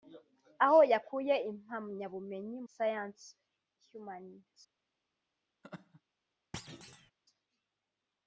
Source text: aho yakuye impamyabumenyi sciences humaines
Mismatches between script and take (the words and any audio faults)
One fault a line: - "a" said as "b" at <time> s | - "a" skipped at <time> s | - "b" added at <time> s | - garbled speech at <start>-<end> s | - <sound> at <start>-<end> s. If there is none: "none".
- laugh at 5.6-6.0 s
- thud at 6.5-7.1 s